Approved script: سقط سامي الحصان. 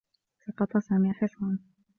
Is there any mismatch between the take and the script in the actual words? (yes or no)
no